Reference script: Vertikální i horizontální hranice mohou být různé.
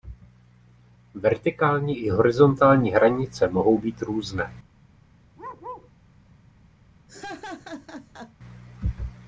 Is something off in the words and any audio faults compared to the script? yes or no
yes